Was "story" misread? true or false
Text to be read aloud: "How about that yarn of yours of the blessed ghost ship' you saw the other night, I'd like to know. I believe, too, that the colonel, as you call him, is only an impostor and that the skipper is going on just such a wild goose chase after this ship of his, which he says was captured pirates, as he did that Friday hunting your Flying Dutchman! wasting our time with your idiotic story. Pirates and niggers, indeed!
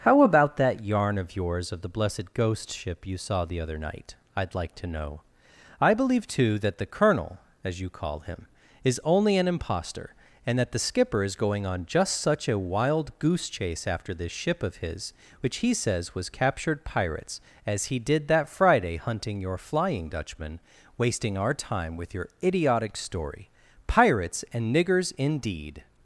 false